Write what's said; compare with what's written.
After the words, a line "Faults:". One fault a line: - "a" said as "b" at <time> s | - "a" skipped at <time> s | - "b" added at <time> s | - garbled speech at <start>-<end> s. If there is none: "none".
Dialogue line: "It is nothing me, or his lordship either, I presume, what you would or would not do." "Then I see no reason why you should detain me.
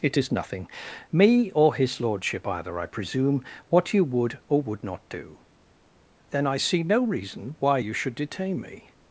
"It is nothing me, or his lordship either, I presume, what you would or would not do." "Then I see no reason why you should detain me.
Faults:
none